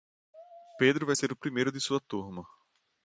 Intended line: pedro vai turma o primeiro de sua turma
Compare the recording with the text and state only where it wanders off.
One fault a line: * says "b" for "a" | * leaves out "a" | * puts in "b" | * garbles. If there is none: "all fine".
* says "ser" for "turma"